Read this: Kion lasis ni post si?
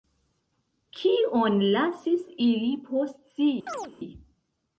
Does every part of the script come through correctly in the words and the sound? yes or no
no